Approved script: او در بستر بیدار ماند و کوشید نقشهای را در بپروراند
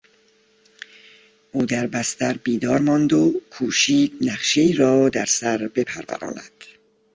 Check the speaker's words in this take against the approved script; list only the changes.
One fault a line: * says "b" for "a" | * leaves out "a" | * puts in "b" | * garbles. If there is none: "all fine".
* puts in "سر"